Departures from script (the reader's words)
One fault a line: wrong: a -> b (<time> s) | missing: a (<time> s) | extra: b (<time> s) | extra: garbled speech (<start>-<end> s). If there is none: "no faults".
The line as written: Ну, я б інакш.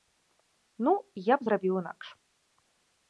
extra: зрабіў (1.5 s)